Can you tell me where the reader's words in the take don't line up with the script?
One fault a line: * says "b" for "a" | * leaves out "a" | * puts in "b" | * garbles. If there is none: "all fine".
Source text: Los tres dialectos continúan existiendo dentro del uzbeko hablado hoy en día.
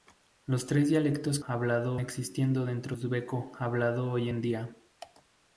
* says "hablado" for "continúan"
* leaves out "del"